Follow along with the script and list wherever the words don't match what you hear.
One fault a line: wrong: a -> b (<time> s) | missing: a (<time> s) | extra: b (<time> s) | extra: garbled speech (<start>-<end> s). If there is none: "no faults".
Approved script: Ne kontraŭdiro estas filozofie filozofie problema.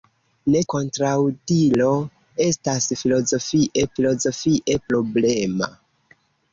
no faults